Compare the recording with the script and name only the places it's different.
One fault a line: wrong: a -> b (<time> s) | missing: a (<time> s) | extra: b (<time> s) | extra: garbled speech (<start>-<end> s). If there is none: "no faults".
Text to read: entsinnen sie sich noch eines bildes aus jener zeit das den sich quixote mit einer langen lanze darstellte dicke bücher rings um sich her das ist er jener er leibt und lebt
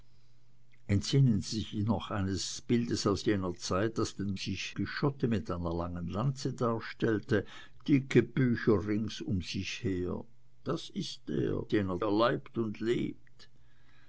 no faults